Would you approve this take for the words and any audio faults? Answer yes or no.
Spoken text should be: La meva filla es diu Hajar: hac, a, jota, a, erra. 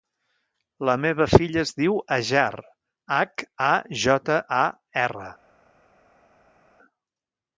yes